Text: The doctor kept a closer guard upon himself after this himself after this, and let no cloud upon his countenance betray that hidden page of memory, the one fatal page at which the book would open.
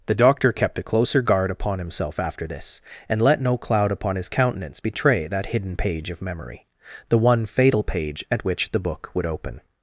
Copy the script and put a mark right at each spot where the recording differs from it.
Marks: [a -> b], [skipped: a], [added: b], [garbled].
The doctor kept a closer guard upon himself after this [skipped: himself after this,] and let no cloud upon his countenance betray that hidden page of memory, the one fatal page at which the book would open.